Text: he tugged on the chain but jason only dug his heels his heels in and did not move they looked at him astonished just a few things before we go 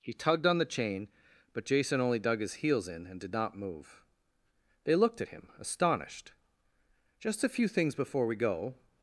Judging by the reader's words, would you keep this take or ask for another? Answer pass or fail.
fail